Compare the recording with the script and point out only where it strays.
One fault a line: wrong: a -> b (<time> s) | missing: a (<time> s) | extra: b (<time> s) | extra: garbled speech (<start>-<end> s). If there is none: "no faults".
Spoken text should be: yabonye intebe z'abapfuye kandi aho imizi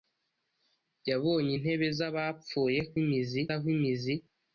wrong: kandi -> imizi (3.0 s)